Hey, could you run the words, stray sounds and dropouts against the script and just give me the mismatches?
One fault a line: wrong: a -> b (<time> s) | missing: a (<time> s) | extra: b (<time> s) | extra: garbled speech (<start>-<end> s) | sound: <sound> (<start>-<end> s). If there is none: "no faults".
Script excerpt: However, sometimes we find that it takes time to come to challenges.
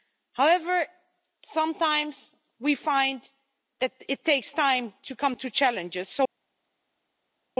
no faults